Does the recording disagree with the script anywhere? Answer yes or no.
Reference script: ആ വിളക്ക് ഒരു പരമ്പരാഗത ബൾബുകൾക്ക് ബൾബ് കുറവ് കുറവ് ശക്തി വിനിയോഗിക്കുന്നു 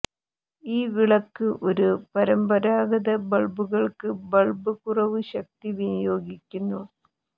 yes